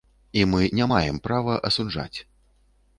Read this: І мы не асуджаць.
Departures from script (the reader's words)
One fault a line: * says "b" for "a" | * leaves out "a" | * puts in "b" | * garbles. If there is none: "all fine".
* puts in "маем права"